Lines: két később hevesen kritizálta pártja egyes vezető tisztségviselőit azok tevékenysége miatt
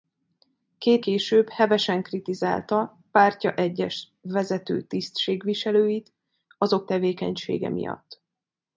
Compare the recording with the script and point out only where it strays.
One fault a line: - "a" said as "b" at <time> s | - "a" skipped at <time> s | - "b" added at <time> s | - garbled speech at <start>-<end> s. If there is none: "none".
none